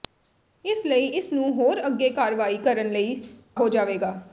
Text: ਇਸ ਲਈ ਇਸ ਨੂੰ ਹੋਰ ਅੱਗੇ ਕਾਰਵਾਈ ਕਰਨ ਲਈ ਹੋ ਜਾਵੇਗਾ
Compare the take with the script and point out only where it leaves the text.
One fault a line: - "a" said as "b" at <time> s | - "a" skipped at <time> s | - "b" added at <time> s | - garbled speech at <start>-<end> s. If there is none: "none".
none